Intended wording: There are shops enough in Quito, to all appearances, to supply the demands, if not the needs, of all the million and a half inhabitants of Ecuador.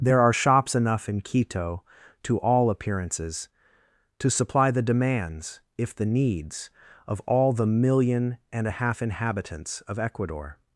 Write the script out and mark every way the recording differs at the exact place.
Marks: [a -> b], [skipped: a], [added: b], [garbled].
There are shops enough in Quito, to all appearances, to supply the demands, if [skipped: not] the needs, of all the million and a half inhabitants of Ecuador.